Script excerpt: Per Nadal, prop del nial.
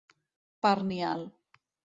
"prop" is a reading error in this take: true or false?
true